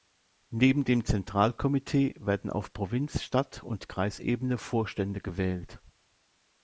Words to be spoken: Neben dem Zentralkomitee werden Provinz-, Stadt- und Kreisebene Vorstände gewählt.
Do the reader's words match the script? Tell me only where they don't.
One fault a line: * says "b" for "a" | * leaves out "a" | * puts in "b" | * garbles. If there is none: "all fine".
* puts in "auf"